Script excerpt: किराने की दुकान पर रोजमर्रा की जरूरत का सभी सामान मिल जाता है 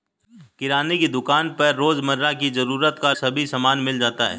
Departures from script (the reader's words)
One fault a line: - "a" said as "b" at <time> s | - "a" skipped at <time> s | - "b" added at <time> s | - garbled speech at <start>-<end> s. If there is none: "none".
none